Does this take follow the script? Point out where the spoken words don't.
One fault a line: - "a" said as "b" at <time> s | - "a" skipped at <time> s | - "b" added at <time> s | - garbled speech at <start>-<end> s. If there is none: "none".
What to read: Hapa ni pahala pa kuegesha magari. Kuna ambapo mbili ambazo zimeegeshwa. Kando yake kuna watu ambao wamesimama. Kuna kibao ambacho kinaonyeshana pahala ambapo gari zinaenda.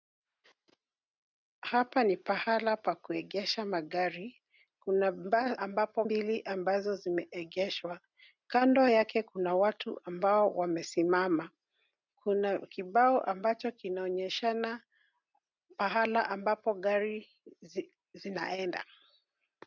none